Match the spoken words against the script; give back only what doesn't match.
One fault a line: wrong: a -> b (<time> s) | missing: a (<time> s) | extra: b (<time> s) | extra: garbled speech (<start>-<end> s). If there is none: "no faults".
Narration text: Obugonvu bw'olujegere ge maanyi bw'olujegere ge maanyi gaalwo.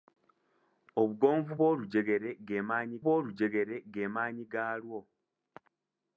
no faults